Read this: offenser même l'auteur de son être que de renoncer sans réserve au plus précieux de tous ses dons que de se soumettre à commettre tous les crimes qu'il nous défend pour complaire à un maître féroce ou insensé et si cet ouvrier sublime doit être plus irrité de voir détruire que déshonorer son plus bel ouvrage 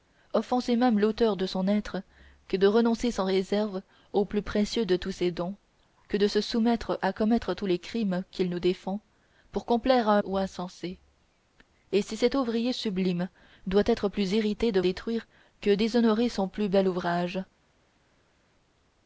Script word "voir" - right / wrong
wrong